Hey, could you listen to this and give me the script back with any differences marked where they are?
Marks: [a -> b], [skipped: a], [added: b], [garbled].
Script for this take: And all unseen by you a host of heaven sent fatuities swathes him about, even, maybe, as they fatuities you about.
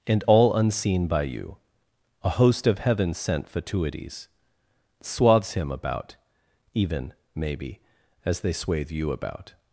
And all unseen by you a host of heaven sent fatuities swathes him about, even, maybe, as they [fatuities -> swathe] you about.